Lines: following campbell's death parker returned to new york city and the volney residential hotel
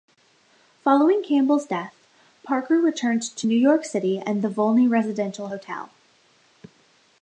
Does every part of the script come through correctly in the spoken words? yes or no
yes